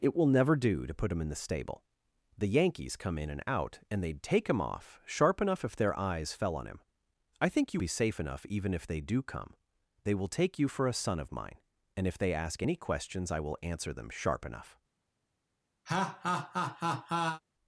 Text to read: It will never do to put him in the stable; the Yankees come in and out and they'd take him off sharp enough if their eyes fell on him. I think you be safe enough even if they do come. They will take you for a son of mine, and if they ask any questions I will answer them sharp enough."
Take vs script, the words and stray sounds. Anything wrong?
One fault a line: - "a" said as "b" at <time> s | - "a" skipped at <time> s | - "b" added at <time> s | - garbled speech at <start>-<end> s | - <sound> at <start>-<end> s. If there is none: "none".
- laugh at 15.9-17.4 s